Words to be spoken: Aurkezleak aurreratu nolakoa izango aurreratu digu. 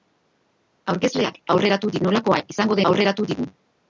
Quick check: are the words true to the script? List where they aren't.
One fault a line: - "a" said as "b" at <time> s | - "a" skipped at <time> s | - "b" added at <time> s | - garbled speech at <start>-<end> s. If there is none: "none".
none